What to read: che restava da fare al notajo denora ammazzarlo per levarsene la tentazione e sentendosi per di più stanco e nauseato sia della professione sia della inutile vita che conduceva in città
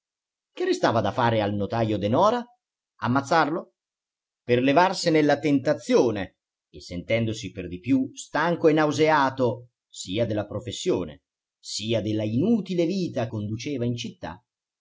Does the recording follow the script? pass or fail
fail